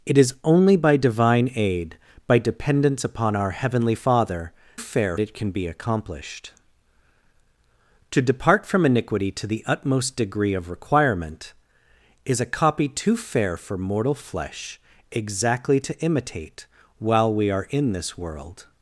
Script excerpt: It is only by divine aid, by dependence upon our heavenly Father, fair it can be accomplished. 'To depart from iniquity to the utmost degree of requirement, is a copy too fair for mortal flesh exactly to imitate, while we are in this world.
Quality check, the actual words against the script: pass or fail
pass